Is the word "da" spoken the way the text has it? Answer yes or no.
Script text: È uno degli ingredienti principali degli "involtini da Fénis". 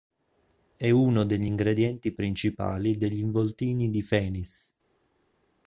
no